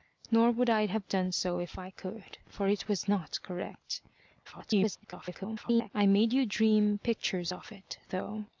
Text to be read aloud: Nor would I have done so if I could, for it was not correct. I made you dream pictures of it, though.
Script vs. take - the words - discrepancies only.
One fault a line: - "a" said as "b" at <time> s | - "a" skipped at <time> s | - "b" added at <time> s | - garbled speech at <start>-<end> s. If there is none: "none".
- garbled speech at 4.4-5.9 s